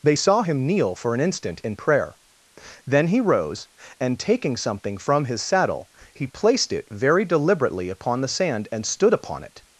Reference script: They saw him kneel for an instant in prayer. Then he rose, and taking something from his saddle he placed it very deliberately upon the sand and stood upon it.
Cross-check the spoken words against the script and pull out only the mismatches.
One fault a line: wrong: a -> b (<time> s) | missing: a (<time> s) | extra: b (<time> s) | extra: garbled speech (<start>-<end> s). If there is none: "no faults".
no faults